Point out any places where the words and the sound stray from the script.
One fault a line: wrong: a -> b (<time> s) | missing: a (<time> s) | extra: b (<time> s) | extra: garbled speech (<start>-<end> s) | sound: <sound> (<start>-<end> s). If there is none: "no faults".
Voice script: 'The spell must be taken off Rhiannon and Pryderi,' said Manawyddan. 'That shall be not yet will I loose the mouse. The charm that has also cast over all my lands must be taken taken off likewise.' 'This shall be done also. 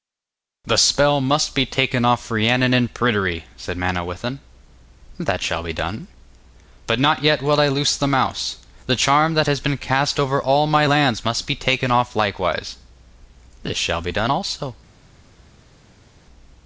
extra: done But (5.7 s)
wrong: also -> been (9.6 s)
missing: taken (11.9 s)